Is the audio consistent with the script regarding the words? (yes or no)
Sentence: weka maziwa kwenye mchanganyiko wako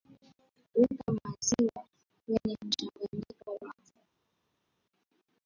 yes